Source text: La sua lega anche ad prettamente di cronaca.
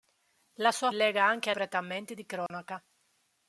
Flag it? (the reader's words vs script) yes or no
no